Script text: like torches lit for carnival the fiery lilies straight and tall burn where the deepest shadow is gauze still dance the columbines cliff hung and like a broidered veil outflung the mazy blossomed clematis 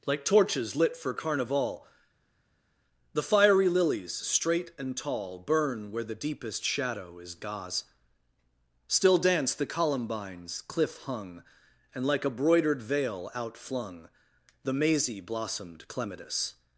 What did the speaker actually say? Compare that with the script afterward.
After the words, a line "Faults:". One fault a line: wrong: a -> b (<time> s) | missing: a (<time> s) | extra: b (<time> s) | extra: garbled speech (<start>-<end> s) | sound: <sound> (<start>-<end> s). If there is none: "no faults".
like torches lit for carnival the fiery lilies straight and tall burn where the deepest shadow is gauze still dance the columbines cliff hung and like a broidered veil outflung the mazy blossomed clematis
Faults:
no faults